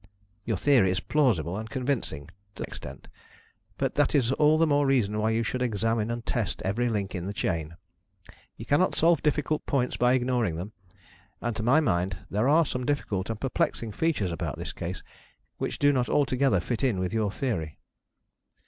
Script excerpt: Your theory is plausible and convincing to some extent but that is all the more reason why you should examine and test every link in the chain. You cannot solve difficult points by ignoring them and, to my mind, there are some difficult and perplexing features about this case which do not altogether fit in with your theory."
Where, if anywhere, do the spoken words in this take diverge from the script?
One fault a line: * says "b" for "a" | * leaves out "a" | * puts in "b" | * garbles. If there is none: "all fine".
* leaves out "some"